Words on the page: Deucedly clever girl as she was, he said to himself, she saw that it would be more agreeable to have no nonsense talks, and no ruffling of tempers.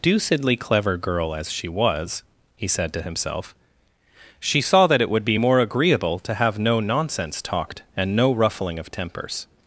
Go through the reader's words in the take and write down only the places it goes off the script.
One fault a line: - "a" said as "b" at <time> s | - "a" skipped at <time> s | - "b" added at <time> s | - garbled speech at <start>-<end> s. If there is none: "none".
- "talks" said as "talked" at 7.4 s